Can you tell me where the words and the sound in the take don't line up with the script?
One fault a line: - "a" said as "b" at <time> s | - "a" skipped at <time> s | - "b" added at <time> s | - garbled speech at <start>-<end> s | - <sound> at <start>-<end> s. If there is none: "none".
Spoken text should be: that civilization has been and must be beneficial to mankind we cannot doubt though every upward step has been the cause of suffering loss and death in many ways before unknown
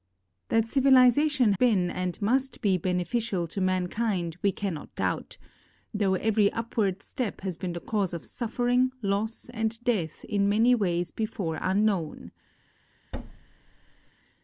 - "has" skipped at 1.5 s
- thud at 13.1-14.1 s